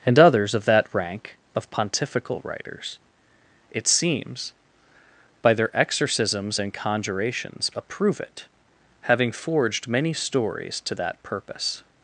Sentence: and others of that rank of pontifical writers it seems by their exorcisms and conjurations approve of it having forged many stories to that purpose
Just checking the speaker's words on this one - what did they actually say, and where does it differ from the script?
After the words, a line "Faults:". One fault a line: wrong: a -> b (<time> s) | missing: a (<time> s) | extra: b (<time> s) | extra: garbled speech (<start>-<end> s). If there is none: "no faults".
and others of that rank of pontifical writers it seems by their exorcisms and conjurations approve it having forged many stories to that purpose
Faults:
missing: of (8.2 s)